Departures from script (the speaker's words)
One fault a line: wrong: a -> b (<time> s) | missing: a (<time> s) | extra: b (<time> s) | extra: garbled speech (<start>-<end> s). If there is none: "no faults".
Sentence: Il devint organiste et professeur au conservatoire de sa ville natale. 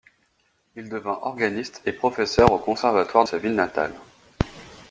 missing: de (3.2 s)